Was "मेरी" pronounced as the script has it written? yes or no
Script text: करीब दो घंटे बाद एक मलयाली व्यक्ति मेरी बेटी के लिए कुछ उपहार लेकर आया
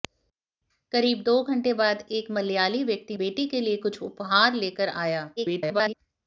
no